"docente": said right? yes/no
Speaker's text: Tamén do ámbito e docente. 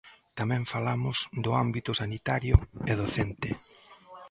yes